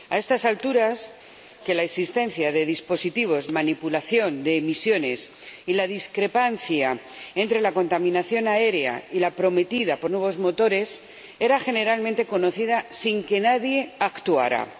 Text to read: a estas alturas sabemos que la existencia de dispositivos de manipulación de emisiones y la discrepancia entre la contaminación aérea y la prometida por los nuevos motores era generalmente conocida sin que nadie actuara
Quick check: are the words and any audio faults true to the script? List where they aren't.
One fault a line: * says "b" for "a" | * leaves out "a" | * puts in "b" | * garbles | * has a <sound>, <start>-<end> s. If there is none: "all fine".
* leaves out "sabemos"
* leaves out "de"
* leaves out "los"